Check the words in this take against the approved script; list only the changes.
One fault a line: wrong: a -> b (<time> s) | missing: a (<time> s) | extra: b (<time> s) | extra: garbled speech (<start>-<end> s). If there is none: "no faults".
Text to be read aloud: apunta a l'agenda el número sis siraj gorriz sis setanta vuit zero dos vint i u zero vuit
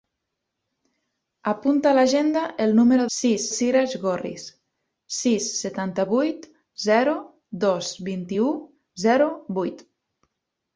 no faults